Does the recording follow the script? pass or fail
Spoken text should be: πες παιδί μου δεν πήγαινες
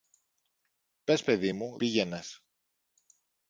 fail